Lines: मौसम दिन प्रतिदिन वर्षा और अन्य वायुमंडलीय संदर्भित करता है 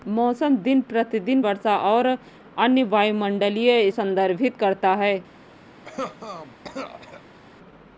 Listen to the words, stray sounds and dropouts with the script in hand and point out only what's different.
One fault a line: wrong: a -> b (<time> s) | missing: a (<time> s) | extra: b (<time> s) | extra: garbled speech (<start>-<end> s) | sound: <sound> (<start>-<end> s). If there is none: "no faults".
sound: cough (5.8-7.4 s)